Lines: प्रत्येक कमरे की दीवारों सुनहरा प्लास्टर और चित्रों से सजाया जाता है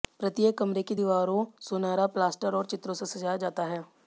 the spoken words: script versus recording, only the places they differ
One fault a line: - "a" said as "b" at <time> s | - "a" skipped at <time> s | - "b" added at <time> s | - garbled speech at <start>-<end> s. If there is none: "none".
none